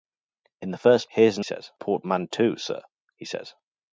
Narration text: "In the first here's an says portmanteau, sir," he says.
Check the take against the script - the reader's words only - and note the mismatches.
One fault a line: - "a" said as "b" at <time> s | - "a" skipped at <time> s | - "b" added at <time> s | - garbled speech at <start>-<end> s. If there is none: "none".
none